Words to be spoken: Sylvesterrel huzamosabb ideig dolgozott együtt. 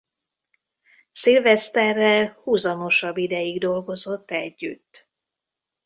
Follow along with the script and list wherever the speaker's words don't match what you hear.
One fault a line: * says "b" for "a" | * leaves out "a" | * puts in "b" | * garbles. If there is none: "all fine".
all fine